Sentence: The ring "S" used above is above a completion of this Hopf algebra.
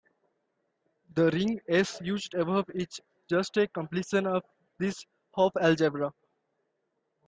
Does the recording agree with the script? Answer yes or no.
no